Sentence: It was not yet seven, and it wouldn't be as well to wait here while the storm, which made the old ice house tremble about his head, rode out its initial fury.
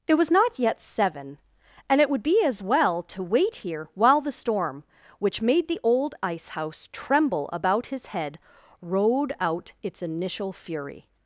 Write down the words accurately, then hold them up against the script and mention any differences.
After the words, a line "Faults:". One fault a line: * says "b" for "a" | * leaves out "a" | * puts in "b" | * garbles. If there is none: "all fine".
It was not yet seven, and it would be as well to wait here while the storm, which made the old ice house tremble about his head, rode out its initial fury.
Faults:
* says "would" for "wouldn't"